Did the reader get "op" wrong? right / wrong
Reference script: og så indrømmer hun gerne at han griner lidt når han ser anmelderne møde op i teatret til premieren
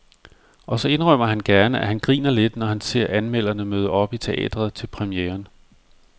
right